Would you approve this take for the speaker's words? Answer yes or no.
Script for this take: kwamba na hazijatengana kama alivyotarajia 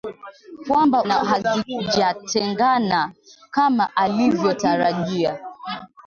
yes